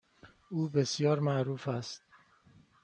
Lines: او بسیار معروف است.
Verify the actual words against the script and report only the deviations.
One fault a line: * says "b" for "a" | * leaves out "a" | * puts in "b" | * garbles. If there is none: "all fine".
all fine